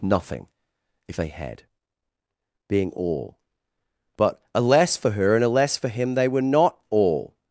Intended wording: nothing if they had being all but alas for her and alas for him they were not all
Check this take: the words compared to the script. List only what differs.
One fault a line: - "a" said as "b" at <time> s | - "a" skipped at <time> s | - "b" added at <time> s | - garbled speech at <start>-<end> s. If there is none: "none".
none